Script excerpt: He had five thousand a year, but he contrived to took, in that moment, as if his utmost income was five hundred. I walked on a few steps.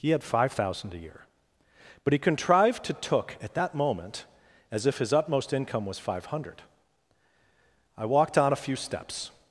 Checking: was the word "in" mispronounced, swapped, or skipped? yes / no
yes